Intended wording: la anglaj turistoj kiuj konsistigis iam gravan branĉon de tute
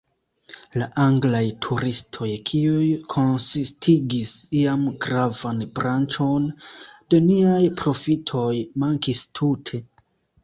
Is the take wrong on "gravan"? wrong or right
right